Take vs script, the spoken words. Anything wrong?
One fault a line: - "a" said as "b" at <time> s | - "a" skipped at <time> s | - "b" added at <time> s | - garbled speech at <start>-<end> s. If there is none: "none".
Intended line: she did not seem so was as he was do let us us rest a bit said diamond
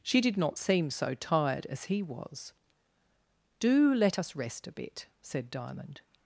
- "was" said as "tired" at 1.1 s
- "us" skipped at 4.3 s